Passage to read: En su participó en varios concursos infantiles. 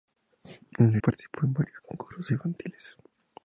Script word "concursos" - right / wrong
right